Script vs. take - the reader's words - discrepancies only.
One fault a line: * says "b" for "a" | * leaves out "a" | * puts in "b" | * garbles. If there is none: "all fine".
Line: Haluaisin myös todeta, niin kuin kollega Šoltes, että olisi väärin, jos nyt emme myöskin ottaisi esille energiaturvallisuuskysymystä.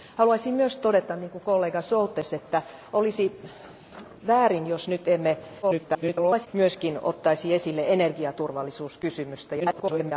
* garbles
* garbles